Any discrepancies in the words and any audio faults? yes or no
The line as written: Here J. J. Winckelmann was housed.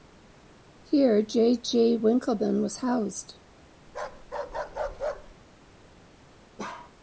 yes